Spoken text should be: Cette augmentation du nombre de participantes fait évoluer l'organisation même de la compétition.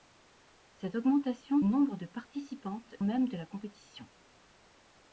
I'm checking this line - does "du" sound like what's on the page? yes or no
no